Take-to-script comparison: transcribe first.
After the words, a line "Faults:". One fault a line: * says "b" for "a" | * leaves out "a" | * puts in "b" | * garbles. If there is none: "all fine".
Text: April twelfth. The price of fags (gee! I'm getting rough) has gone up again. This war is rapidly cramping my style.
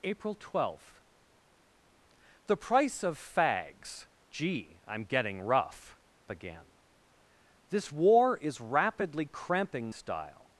April twelfth. The price of fags (gee! I'm getting rough) again. This war is rapidly cramping style.
Faults:
* leaves out "has gone up"
* leaves out "my"